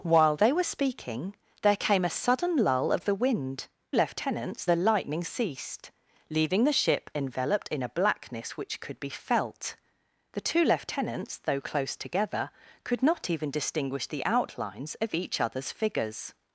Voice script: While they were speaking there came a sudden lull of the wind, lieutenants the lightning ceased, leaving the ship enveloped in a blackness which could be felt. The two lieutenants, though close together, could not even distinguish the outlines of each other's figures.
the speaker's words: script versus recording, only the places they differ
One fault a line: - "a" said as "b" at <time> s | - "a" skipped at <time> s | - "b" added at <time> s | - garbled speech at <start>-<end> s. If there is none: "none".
none